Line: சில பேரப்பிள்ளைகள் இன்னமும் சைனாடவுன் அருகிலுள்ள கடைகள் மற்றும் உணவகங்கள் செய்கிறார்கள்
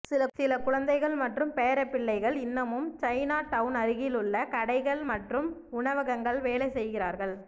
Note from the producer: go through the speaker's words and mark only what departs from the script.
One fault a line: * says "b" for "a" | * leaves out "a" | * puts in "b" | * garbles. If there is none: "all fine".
* puts in "குழந்தைகள் மற்றும்"
* puts in "வேலை"